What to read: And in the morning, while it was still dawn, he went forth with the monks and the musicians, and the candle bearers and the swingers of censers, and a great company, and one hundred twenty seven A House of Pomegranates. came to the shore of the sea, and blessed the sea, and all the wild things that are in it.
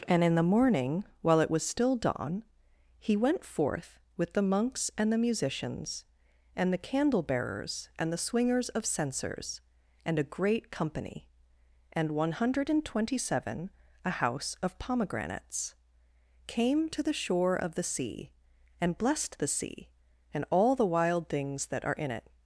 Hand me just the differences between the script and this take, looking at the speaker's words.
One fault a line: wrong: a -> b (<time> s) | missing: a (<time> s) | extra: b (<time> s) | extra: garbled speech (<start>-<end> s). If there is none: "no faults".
extra: and (12.7 s)